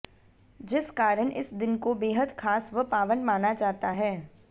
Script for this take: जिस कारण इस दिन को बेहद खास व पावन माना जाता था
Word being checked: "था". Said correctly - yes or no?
no